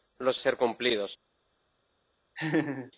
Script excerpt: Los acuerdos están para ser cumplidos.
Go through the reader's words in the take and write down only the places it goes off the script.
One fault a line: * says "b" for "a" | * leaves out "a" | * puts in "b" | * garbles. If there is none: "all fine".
* leaves out "acuerdos están para"